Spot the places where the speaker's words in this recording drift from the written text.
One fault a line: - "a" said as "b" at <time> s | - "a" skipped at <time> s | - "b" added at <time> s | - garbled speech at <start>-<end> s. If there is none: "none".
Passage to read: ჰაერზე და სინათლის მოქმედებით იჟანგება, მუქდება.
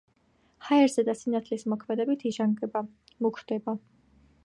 none